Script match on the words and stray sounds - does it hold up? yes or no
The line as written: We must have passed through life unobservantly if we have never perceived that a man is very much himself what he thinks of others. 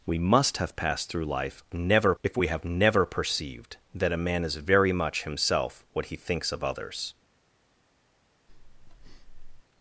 no